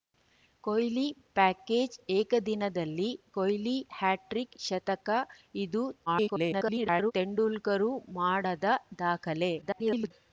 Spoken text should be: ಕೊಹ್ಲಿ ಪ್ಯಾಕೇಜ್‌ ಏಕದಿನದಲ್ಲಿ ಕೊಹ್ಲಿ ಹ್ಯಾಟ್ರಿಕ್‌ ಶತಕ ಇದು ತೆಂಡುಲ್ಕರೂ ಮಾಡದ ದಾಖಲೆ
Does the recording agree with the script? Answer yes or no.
no